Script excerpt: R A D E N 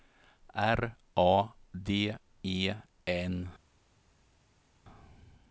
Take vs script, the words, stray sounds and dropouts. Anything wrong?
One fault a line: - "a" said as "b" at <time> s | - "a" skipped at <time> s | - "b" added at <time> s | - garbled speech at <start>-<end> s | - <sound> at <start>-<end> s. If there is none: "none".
none